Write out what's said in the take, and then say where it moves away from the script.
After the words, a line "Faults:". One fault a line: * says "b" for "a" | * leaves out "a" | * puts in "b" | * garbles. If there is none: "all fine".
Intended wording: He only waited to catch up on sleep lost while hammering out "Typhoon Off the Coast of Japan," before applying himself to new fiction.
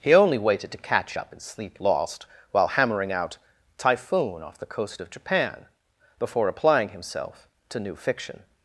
He only waited to catch up in sleep lost while hammering out "Typhoon Off the Coast of Japan," before applying himself to new fiction.
Faults:
* says "in" for "on"